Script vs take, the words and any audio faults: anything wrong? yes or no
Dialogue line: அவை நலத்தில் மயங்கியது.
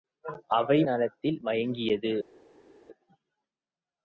no